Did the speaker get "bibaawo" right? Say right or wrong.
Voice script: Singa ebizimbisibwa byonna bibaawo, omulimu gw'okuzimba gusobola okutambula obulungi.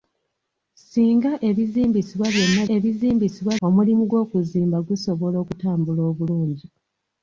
wrong